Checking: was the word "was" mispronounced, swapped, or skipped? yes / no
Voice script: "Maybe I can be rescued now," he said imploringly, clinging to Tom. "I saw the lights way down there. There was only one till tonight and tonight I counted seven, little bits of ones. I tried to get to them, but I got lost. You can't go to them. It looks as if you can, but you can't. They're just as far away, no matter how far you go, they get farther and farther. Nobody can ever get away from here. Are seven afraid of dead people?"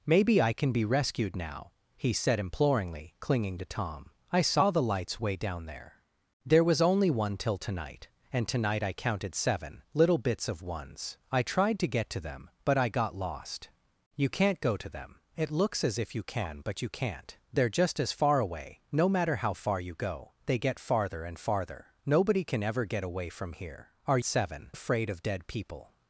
no